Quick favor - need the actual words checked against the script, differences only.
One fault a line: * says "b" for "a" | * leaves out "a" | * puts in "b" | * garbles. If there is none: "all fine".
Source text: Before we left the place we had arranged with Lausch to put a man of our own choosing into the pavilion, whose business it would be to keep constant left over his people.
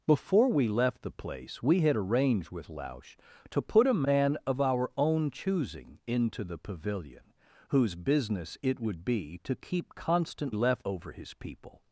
all fine